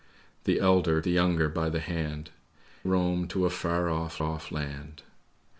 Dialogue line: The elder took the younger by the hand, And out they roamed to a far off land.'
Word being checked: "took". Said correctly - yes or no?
no